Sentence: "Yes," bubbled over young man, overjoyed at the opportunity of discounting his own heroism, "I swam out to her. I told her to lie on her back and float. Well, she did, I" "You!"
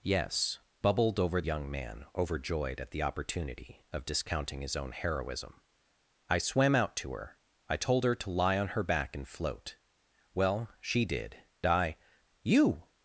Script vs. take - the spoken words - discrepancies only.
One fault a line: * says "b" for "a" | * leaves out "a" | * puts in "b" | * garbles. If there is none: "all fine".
all fine